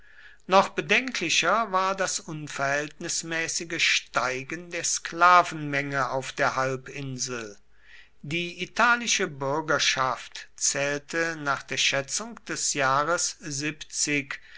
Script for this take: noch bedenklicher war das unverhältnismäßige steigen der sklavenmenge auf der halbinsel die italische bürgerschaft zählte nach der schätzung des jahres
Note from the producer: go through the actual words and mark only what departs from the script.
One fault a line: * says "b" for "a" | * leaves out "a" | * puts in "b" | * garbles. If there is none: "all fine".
all fine